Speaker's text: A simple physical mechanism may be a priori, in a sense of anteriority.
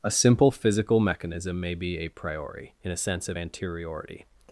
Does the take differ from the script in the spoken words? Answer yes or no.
no